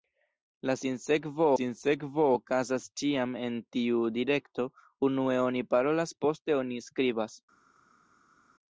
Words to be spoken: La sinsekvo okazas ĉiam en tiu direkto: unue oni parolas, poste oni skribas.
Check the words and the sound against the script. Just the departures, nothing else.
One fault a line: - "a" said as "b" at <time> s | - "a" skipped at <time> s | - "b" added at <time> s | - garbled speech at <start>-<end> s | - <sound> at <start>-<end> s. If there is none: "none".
- "sinsekvo" added at 1.6 s